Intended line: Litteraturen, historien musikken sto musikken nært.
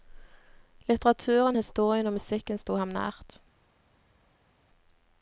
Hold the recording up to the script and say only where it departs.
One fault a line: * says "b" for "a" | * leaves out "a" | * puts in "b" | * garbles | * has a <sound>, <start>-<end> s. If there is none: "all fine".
* puts in "og"
* says "ham" for "musikken"